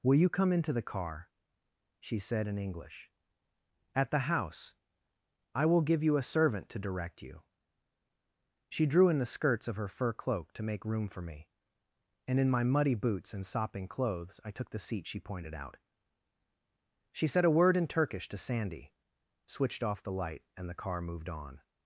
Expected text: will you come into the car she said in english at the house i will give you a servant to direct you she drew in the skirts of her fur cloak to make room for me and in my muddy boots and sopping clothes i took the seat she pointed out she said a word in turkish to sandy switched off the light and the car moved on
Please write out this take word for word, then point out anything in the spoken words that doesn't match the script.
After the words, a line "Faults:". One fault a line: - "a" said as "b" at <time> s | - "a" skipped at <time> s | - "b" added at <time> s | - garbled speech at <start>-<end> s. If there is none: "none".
will you come into the car she said in english at the house i will give you a servant to direct you she drew in the skirts of her fur cloak to make room for me and in my muddy boots and sopping clothes i took the seat she pointed out she said a word in turkish to sandy switched off the light and the car moved on
Faults:
none